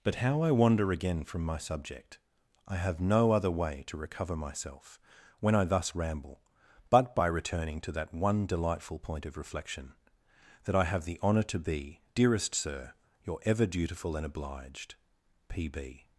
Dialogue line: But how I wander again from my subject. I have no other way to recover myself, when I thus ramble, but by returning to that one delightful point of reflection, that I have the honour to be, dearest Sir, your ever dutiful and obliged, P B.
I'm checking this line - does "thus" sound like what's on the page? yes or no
yes